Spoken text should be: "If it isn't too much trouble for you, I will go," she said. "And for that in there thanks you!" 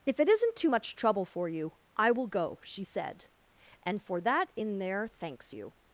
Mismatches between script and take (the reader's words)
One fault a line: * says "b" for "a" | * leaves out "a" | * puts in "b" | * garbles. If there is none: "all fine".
all fine